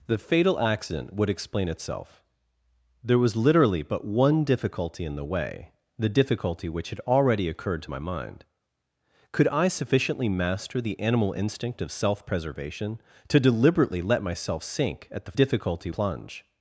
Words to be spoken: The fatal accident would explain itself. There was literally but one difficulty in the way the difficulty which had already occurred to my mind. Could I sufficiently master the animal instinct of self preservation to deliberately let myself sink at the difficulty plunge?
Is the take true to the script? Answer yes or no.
yes